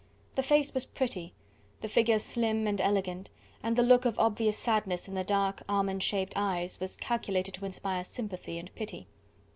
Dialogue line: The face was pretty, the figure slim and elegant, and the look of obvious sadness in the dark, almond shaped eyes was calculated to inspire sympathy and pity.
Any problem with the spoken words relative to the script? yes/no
no